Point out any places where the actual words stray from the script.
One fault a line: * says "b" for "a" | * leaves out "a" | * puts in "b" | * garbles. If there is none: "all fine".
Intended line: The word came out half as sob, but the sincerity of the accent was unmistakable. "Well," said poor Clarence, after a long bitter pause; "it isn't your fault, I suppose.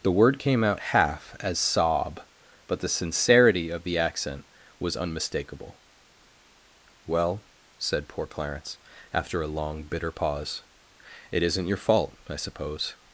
all fine